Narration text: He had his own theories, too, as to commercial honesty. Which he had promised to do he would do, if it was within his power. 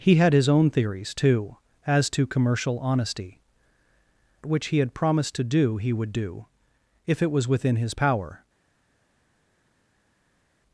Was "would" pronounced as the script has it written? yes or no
yes